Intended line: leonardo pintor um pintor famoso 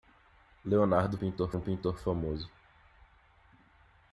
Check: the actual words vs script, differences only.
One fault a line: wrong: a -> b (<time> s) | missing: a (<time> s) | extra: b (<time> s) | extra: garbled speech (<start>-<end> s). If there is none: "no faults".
no faults